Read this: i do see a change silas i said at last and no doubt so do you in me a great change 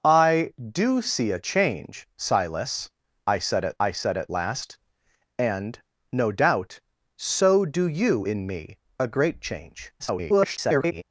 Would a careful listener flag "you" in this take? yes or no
no